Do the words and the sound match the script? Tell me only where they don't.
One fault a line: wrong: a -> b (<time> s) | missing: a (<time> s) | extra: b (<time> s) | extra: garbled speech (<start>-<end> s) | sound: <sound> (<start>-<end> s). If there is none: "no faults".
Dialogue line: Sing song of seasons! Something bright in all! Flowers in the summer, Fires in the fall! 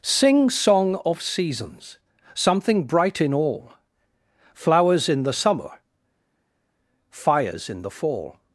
no faults